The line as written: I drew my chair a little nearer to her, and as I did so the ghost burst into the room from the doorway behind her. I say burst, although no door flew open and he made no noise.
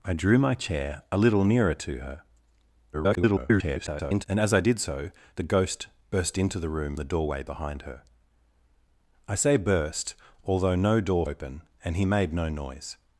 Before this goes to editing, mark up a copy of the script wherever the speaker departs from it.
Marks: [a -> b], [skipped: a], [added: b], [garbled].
I drew my chair a little nearer to her, [garbled] and as I did so the ghost burst into the room [skipped: from] the doorway behind her. I say burst, although no door [skipped: flew] open and he made no noise.